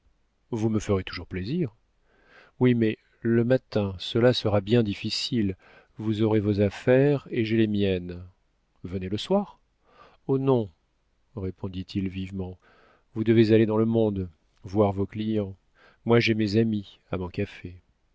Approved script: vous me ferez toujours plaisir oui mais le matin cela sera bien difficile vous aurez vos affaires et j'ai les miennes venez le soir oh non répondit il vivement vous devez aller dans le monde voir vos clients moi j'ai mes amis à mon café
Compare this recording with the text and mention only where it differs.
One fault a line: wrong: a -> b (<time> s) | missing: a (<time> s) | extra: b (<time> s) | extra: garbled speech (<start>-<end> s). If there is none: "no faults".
no faults